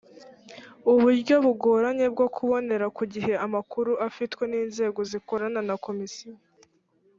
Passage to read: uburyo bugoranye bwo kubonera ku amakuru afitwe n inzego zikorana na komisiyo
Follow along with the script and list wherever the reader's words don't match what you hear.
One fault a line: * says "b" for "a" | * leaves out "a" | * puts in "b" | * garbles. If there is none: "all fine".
* puts in "gihe"